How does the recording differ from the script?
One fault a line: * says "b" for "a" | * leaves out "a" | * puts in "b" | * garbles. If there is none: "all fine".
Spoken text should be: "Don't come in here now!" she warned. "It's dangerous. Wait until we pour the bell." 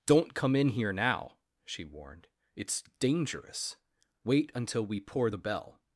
all fine